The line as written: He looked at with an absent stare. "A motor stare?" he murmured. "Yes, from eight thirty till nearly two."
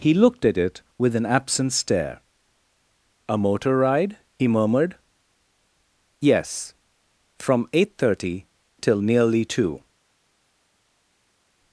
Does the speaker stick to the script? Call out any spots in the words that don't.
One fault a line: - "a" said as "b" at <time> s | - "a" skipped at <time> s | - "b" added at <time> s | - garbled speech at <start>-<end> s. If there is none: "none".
- "it" added at 0.6 s
- "stare" said as "ride" at 3.8 s